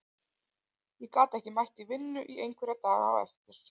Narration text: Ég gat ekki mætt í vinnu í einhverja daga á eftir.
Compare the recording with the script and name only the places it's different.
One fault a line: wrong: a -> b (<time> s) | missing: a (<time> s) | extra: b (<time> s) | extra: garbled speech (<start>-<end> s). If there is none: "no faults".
no faults